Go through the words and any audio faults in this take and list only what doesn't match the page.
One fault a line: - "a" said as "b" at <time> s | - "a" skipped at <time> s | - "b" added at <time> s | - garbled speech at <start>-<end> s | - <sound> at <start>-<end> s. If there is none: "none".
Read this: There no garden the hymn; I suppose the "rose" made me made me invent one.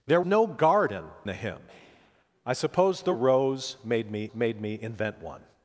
none